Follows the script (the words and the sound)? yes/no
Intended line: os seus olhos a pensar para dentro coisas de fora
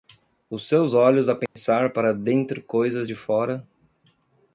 no